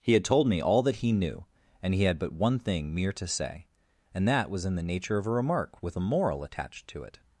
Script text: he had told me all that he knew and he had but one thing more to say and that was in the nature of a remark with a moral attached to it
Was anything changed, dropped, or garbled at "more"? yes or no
yes